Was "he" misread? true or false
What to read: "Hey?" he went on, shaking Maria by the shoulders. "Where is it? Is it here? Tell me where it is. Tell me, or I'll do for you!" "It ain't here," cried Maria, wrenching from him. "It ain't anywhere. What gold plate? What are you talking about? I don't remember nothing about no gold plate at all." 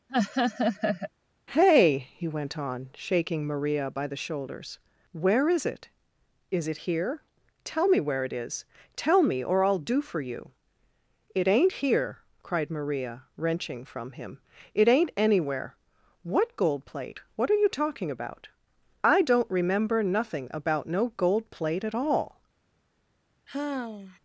false